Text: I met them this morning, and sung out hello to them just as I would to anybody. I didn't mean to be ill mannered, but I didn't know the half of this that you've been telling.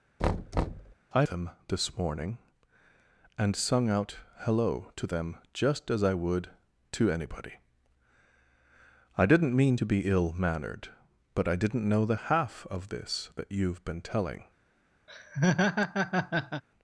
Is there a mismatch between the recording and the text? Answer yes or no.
yes